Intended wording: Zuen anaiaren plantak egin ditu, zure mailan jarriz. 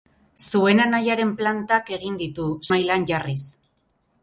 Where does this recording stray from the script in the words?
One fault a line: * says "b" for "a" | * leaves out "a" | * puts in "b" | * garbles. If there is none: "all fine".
* leaves out "zure"